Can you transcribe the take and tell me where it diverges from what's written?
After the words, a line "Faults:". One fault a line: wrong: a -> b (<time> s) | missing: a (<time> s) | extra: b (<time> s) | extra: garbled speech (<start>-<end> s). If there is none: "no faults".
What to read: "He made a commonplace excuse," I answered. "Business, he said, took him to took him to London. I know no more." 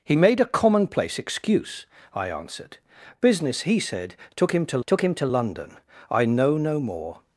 "He made a commonplace excuse," I answered. "Business, he said, took him to took him to London. I know no more."
Faults:
no faults